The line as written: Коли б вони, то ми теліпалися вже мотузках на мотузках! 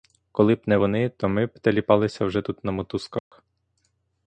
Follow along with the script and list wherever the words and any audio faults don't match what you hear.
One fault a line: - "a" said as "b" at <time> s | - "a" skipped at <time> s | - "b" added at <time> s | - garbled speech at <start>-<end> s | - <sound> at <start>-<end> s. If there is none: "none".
- "не" added at 0.7 s
- "б" added at 1.4 s
- "мотузках" said as "тут" at 2.4 s
- dropout at 3.2-3.3 s